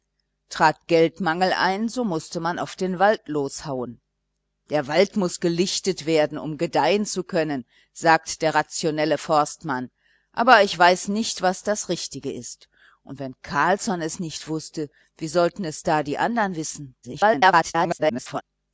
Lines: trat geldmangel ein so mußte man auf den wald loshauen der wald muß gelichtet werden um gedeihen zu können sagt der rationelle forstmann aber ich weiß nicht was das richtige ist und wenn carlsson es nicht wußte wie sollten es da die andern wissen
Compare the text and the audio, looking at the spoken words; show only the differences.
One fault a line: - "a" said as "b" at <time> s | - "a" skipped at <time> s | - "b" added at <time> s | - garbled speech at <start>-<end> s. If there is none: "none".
- garbled speech at 17.0-18.4 s